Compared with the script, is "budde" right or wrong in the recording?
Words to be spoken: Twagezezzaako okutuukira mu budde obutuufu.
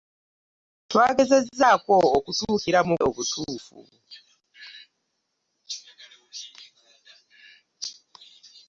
wrong